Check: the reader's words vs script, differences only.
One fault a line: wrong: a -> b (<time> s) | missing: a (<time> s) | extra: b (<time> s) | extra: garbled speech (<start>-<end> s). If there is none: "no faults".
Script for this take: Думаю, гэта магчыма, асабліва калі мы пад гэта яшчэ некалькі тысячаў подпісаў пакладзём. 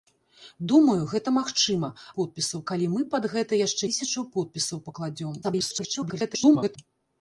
wrong: асабліва -> подпісаў (2.2 s)
missing: некалькі (3.8 s)
extra: garbled speech (5.4-6.8 s)